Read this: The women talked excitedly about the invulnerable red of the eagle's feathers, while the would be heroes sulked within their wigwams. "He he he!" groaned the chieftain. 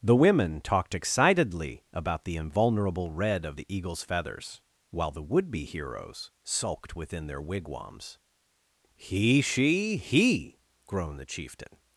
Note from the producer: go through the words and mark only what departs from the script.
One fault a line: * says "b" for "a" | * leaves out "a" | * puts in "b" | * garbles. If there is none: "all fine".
* says "she" for "he"